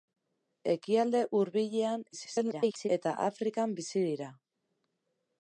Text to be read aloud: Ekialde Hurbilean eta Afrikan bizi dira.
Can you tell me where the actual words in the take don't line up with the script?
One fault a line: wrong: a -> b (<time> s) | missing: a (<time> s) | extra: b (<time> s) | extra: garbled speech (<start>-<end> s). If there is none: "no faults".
extra: garbled speech (2.1-2.9 s)